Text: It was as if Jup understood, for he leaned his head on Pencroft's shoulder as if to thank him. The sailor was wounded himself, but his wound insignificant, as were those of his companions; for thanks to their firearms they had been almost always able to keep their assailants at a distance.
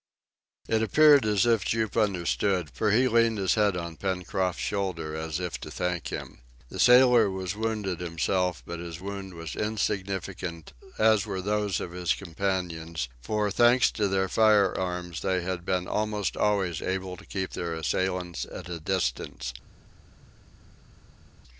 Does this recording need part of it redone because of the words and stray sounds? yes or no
yes